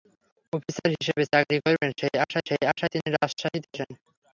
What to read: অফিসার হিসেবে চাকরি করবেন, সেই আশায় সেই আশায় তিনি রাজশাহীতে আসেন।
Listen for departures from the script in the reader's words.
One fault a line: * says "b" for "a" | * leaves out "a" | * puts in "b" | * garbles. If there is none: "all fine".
all fine